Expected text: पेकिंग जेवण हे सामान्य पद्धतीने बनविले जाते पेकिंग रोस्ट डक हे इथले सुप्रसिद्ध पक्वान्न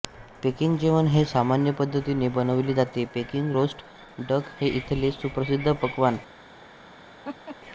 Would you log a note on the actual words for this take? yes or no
no